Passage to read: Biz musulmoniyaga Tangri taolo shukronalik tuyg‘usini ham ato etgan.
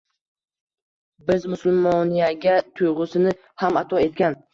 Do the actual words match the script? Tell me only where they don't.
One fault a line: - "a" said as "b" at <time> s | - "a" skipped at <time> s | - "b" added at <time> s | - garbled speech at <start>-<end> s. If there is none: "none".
- "Tangri taolo shukronalik" skipped at 2.5 s